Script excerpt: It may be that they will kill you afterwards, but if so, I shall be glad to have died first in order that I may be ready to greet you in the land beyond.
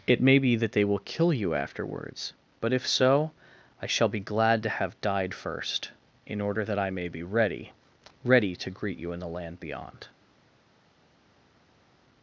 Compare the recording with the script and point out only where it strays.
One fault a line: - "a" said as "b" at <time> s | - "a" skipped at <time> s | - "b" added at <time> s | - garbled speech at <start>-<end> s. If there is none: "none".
- "ready" added at 8.2 s